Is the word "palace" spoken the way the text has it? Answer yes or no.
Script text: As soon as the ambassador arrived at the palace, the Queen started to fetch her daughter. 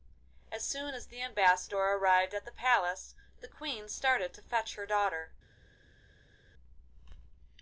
yes